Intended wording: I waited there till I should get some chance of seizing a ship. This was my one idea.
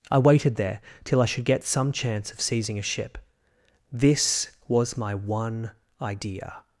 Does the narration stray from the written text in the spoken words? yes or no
no